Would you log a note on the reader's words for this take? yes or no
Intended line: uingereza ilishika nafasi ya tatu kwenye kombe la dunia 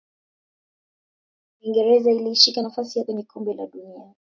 yes